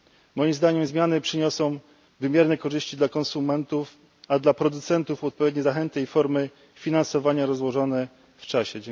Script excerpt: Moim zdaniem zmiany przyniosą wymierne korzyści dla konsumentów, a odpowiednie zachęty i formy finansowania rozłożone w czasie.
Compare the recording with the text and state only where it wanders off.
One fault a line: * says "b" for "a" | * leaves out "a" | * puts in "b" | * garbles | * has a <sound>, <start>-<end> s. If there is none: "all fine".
* puts in "dla producentów"